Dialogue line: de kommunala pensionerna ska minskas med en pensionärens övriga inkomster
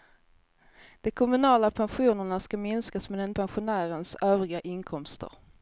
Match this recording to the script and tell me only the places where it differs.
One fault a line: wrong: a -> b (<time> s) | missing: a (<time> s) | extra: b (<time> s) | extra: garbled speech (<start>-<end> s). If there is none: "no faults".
no faults